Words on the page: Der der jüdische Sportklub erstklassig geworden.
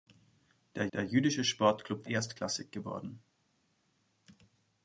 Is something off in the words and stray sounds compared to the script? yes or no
no